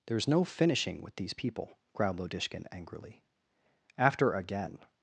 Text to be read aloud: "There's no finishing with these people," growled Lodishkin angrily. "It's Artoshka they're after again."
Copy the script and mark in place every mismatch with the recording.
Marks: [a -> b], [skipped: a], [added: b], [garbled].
"There's no finishing with these people," growled Lodishkin angrily. [skipped: "It's Artoshka they're] after again."